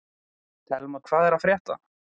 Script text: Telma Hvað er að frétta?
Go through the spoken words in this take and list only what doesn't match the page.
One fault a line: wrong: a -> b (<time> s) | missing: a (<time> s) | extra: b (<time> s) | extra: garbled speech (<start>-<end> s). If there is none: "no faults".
no faults